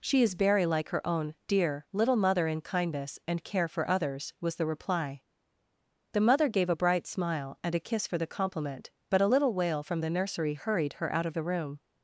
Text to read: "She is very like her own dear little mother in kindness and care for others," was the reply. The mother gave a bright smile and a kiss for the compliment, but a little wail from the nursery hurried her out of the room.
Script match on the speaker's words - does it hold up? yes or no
yes